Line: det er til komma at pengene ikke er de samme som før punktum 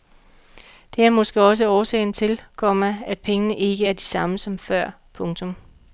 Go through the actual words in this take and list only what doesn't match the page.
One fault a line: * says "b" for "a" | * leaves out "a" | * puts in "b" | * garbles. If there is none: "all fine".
* puts in "måske også årsagen"